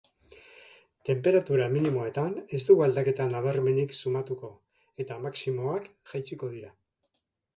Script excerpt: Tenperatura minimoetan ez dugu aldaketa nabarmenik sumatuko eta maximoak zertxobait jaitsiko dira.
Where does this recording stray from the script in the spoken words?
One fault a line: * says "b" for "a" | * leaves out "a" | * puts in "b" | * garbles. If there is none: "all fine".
* leaves out "zertxobait"